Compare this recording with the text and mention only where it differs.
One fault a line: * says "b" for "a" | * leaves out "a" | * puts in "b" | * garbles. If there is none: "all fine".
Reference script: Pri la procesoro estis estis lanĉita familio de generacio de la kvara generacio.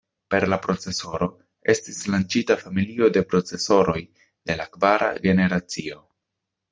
* says "Per" for "Pri"
* leaves out "estis"
* says "procesoroj" for "generacio"